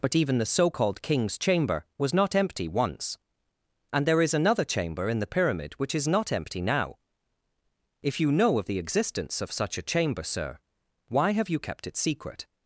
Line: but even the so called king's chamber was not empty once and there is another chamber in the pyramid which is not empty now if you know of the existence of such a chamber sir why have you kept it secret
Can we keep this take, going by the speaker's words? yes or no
yes